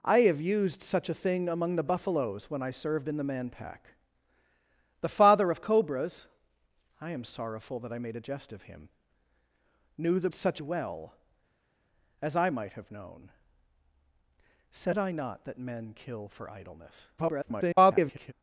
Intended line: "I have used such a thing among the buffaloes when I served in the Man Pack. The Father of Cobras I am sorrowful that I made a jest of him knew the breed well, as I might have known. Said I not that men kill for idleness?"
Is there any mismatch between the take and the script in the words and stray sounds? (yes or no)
yes